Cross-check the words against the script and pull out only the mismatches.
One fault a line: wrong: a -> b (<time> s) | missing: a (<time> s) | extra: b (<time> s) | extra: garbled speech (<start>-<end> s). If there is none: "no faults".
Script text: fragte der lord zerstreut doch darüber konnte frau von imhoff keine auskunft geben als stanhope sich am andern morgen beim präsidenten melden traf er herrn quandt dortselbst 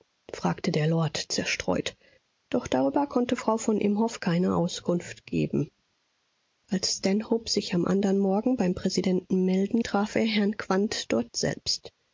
no faults